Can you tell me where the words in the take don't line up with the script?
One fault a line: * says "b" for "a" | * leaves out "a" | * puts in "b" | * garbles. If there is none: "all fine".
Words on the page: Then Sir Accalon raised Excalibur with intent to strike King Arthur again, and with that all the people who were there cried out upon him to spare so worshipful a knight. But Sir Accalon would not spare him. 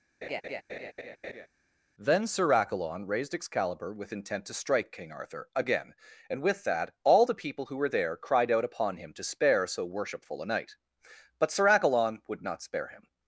all fine